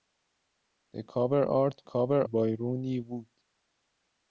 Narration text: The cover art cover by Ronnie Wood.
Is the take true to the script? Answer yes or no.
yes